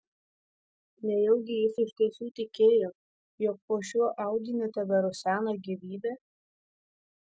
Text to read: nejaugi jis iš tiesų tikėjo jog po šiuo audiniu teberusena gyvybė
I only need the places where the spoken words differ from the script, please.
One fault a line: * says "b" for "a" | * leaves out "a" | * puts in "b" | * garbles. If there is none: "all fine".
all fine